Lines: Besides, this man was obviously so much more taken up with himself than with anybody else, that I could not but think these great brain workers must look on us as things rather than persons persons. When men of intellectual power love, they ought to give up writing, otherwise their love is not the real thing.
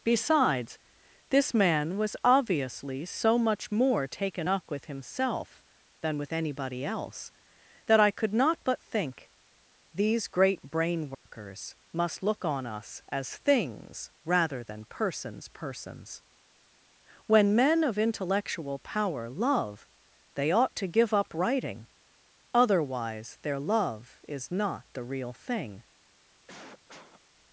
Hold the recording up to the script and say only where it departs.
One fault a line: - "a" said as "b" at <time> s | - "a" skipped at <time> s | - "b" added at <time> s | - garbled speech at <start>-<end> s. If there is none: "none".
none